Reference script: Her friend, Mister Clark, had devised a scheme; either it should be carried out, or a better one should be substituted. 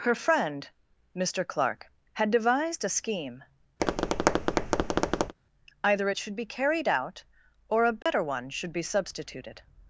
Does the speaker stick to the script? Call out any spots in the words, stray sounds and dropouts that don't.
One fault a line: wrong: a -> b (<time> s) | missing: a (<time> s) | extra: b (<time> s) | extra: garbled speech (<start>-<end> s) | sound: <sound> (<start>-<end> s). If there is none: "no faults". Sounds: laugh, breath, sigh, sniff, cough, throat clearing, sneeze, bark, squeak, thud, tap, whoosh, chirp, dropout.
sound: tap (3.8-5.3 s)
sound: dropout (8.0-8.1 s)